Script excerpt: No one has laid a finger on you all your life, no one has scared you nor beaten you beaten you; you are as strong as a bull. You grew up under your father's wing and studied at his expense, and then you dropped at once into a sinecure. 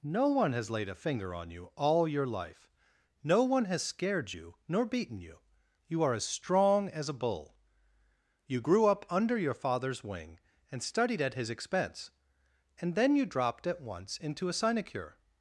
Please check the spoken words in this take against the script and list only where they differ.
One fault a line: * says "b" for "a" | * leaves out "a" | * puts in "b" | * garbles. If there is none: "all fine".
* leaves out "beaten you"